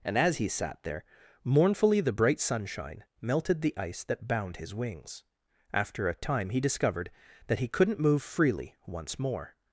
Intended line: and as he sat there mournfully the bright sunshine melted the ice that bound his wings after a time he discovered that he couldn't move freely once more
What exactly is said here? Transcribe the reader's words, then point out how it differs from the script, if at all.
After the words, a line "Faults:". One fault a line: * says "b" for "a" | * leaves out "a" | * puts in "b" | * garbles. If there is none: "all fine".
and as he sat there mournfully the bright sunshine melted the ice that bound his wings after a time he discovered that he couldn't move freely once more
Faults:
all fine